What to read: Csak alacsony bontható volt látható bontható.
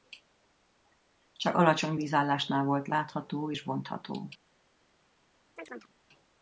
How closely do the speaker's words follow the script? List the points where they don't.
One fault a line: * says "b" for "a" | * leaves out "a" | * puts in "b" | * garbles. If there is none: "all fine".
* says "vízállásnál" for "bontható"
* puts in "és"